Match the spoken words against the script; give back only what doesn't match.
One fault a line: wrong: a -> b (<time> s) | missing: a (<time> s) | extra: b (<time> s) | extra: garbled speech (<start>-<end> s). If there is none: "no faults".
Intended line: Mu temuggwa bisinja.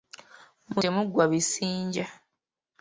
no faults